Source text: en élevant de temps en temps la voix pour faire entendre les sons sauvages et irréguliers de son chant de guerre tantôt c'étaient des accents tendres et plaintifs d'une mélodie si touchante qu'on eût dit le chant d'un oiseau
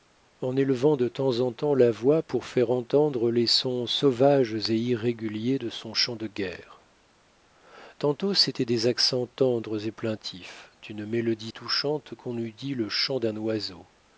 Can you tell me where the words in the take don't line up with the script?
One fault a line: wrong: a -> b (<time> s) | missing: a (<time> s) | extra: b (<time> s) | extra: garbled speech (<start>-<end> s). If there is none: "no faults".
missing: si (11.5 s)